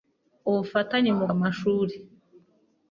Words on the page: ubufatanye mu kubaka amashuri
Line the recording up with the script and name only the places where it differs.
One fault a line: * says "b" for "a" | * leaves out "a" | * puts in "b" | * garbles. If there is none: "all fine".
* leaves out "kubaka"